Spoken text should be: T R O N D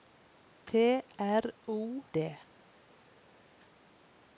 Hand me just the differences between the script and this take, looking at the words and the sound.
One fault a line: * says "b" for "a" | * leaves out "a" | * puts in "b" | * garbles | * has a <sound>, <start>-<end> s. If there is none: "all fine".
* leaves out "N"